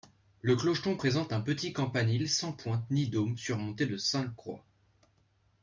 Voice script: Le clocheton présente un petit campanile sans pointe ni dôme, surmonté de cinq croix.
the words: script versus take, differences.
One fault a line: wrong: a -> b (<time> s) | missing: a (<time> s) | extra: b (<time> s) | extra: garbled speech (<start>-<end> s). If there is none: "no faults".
no faults